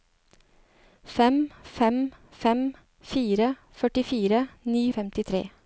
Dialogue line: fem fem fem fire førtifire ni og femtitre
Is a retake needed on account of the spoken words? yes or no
no